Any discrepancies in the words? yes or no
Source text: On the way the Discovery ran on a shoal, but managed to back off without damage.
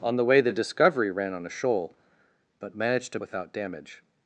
yes